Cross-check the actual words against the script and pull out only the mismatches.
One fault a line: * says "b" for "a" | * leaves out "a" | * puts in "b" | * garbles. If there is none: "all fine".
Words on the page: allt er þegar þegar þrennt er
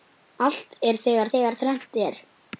all fine